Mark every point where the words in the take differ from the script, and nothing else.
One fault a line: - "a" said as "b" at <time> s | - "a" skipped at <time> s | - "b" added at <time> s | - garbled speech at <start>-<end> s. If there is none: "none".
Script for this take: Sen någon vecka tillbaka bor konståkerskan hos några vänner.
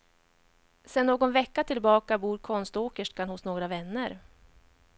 none